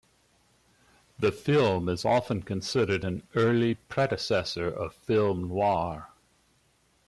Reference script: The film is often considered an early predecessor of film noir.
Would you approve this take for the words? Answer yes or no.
yes